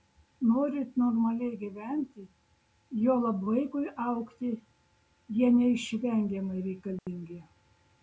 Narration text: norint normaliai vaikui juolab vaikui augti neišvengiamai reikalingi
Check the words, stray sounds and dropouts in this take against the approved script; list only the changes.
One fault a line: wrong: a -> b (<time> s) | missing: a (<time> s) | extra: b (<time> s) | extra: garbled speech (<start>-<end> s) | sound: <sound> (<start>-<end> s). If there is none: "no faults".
wrong: vaikui -> gyventi (1.6 s)
extra: jie (5.4 s)
sound: dropout (7.0-7.1 s)